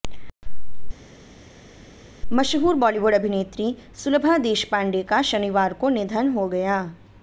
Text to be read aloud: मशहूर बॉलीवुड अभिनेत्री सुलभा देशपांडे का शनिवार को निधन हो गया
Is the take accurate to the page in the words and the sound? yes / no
yes